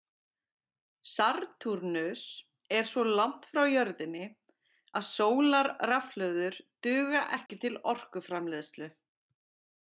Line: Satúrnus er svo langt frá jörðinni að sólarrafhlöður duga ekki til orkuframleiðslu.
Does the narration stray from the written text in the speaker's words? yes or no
no